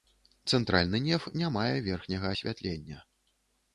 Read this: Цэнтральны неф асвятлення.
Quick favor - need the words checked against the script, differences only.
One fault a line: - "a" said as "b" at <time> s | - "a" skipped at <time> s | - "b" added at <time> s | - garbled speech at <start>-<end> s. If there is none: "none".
- "не мае верхняга" added at 1.4 s